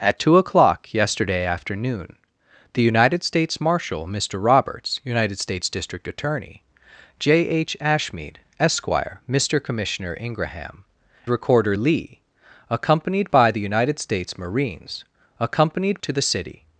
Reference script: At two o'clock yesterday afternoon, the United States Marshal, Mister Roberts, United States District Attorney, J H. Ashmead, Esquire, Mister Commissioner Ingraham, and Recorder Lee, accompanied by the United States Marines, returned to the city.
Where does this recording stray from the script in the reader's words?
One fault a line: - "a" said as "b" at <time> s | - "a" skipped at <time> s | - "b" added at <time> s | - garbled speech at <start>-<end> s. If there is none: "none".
- "and" skipped at 10.8 s
- "returned" said as "accompanied" at 15.4 s